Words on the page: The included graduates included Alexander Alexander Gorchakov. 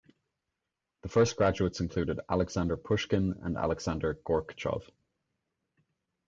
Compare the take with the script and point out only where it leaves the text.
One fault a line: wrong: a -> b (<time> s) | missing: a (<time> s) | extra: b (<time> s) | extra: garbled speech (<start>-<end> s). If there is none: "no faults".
wrong: included -> first (1.1 s)
extra: Pushkin and (2.8 s)